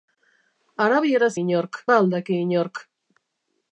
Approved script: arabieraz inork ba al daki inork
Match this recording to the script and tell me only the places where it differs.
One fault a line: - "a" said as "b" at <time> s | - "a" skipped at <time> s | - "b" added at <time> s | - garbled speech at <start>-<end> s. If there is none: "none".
none